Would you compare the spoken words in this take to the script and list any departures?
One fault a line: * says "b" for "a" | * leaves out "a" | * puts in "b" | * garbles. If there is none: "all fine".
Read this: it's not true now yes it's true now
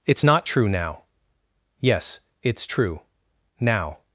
all fine